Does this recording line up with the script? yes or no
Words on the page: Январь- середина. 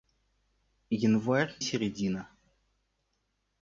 yes